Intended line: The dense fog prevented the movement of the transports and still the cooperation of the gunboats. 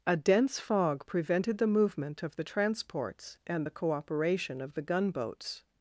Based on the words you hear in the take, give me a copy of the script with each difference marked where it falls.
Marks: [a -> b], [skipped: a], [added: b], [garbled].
[The -> A] dense fog prevented the movement of the transports and [skipped: still] the cooperation of the gunboats.